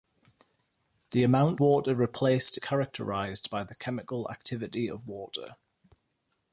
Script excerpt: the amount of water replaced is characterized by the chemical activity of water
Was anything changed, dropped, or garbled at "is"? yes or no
yes